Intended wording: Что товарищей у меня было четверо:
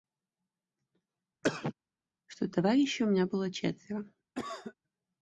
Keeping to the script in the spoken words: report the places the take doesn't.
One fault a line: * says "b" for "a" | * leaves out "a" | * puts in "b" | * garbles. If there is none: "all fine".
all fine